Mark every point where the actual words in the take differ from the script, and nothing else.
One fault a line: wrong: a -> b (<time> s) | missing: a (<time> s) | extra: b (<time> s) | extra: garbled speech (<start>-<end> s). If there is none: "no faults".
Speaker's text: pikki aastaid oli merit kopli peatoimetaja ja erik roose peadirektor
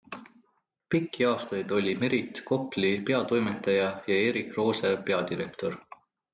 no faults